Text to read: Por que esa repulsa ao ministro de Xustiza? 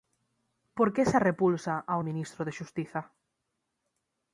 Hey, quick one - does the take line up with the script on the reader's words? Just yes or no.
yes